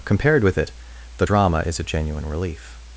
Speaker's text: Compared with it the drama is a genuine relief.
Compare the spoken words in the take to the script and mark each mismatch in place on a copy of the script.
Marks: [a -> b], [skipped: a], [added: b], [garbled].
Compared with it the drama is a genuine relief.